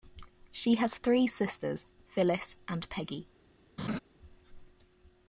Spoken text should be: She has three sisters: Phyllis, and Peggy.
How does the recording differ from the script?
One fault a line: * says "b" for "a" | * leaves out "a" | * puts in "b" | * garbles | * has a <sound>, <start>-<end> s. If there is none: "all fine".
* has a laugh, 3.8-4.0 s